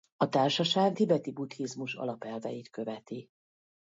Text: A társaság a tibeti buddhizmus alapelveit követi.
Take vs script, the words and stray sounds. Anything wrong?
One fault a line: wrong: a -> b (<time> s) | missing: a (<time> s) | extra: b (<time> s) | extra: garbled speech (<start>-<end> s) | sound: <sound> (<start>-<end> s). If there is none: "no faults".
missing: a (1.0 s)